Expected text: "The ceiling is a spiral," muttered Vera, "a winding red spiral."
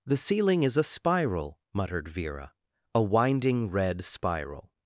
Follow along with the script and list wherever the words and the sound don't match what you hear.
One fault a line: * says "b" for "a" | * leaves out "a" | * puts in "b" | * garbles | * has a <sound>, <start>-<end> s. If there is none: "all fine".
all fine